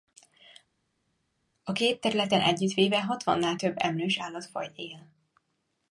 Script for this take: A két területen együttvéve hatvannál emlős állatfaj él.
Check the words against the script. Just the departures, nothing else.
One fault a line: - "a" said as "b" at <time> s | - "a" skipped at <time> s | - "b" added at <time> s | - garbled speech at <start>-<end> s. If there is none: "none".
- "több" added at 3.5 s